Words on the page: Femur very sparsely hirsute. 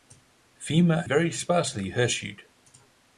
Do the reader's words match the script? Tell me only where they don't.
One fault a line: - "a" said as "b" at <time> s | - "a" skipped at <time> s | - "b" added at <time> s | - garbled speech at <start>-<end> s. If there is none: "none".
none